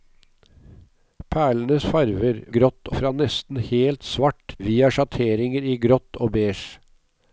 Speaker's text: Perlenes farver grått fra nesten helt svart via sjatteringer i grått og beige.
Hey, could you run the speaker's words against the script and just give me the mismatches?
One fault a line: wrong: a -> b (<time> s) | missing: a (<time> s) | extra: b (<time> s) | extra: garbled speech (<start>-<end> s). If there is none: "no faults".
no faults